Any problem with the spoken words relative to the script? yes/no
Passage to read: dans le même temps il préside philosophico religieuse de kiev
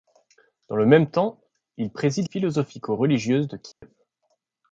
no